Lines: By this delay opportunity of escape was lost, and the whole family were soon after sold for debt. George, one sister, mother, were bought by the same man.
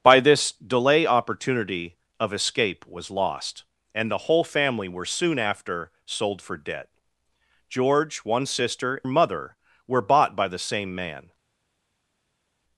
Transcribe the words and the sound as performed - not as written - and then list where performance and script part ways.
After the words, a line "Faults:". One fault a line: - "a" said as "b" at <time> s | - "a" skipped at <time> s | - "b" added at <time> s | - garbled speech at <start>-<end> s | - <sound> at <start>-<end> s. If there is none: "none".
By this delay opportunity of escape was lost, and the whole family were soon after sold for debt. George, one sister, mother, were bought by the same man.
Faults:
none